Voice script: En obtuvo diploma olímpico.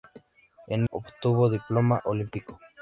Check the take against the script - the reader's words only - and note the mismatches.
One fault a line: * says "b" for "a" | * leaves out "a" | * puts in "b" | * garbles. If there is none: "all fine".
all fine